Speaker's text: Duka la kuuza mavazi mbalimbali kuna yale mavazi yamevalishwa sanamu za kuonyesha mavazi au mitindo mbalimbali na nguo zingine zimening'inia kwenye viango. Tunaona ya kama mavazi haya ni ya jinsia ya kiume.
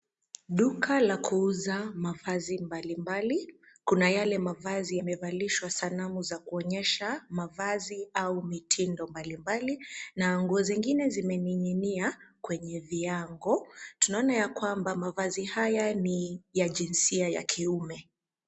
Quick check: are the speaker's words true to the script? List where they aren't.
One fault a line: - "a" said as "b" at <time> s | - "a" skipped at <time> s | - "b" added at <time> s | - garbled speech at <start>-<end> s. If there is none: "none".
- "kama" said as "kwamba" at 14.5 s